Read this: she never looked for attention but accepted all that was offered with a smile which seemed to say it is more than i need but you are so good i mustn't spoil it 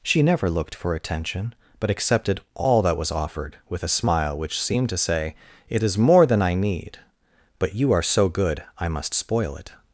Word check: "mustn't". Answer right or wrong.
wrong